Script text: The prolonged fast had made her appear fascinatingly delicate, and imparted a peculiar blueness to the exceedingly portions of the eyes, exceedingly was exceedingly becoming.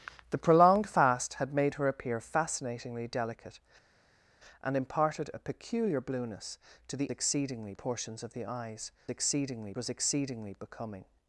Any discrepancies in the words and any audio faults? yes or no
no